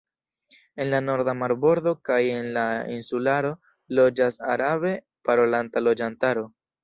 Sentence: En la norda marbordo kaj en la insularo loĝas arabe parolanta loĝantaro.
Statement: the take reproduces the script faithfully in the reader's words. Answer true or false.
true